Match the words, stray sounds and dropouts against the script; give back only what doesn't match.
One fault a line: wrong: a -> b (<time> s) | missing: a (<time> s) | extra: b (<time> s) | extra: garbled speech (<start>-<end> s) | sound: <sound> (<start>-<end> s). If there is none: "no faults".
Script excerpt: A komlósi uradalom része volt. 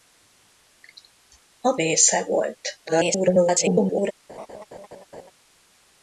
missing: komlósi uradalom (1.8 s)
extra: garbled speech (2.9-4.1 s)
sound: laugh (4.3-5.3 s)